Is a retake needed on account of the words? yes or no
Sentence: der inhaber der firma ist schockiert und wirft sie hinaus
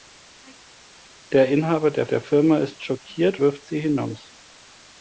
yes